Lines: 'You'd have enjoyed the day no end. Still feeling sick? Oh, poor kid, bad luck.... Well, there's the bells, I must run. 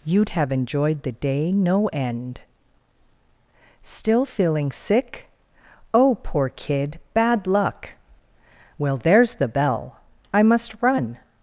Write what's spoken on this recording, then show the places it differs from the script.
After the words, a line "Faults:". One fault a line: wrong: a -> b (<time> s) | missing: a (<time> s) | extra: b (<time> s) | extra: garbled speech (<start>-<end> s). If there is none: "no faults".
'You'd have enjoyed the day no end. Still feeling sick? Oh, poor kid, bad luck.... Well, there's the bell, I must run.
Faults:
wrong: bells -> bell (9.5 s)